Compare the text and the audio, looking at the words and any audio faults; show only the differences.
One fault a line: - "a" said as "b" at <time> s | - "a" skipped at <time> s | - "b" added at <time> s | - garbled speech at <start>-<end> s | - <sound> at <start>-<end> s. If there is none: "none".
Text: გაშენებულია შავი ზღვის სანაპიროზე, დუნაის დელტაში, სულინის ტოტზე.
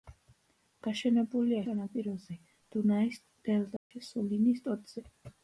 - "შავი ზღვის" skipped at 1.6 s
- dropout at 3.8-3.9 s